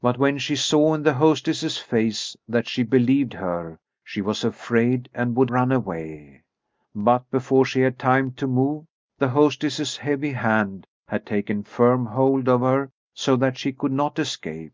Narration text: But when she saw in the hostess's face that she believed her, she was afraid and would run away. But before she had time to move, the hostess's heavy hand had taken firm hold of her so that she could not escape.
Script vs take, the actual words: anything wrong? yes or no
no